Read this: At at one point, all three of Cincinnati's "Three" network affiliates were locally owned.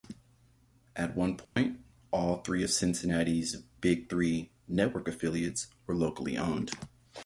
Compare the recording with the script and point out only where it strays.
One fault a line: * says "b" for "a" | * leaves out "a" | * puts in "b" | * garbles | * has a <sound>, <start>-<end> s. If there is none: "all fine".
* leaves out "at"
* has a dropout, 1.4-1.6 s
* puts in "Big"